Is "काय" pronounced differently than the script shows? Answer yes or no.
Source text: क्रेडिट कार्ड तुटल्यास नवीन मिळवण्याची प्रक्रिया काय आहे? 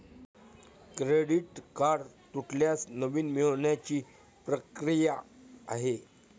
yes